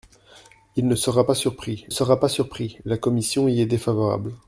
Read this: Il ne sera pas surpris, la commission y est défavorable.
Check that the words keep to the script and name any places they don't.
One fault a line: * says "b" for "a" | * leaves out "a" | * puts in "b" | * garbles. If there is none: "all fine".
* puts in "sera pas surpris"